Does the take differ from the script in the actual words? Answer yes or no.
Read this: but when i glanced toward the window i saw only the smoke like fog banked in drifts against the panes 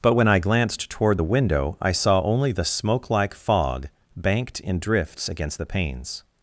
no